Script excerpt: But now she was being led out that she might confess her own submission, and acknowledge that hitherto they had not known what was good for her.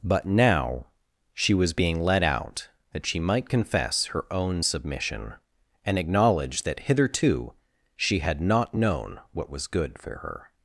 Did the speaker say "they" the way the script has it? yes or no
no